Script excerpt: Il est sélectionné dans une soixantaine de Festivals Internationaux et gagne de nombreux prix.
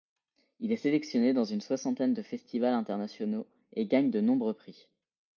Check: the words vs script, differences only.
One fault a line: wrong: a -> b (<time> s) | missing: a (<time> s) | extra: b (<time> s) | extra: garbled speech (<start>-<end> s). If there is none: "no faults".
no faults